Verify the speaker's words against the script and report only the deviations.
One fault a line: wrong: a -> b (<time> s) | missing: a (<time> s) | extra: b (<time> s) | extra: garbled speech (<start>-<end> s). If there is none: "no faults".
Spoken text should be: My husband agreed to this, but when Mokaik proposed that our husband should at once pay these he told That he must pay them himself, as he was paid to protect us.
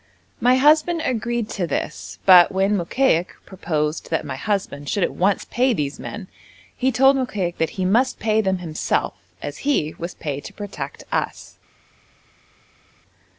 wrong: our -> my (4.2 s)
extra: men (6.0 s)
extra: Mokaik (7.2 s)